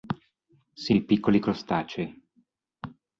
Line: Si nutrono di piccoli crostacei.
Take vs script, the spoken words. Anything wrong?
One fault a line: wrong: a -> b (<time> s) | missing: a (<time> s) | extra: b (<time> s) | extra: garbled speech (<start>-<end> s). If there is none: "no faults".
missing: nutrono (0.9 s)